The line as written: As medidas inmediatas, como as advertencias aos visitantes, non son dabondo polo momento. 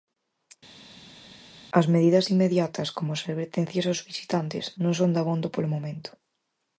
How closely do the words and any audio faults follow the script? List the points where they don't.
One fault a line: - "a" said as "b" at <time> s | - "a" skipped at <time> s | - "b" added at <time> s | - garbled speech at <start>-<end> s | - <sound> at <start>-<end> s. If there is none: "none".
none